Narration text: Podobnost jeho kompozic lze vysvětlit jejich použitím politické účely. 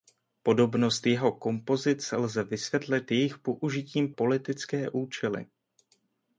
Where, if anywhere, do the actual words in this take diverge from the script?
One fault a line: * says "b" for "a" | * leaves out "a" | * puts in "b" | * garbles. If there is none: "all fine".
all fine